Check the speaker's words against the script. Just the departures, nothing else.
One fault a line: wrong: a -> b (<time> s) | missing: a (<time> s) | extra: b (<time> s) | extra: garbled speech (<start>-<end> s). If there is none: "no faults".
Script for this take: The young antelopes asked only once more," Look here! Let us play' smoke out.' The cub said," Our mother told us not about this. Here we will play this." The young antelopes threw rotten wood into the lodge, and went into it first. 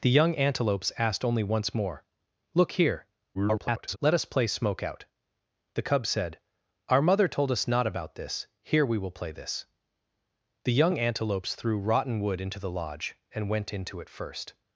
extra: garbled speech (3.3-4.0 s)